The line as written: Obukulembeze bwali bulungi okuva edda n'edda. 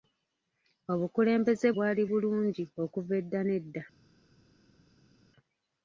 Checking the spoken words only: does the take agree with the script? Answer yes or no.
yes